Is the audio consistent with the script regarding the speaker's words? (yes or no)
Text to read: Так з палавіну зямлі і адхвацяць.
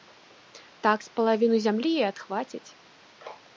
yes